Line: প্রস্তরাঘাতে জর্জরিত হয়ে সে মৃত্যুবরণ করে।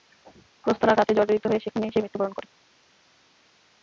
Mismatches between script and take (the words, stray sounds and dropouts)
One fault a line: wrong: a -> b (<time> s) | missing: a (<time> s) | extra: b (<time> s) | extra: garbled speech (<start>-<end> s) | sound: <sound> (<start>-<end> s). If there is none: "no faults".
extra: সেখানেই (1.6 s)